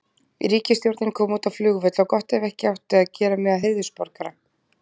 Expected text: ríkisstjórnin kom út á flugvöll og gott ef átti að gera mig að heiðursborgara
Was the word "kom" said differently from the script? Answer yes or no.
no